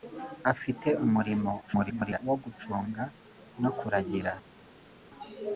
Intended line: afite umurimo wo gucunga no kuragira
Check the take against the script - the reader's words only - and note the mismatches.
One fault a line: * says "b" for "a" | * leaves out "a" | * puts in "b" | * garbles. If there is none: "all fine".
* garbles